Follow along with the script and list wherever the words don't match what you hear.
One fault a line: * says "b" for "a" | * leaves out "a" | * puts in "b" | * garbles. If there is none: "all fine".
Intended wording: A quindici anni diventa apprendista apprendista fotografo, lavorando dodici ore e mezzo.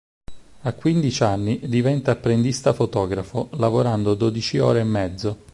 * leaves out "apprendista"